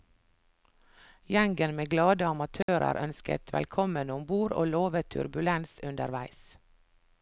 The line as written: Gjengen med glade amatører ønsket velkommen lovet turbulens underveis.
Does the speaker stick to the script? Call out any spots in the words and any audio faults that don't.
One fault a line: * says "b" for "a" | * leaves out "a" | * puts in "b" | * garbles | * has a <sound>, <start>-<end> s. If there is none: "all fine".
* has a dropout, 2.6-2.7 s
* puts in "om bord og"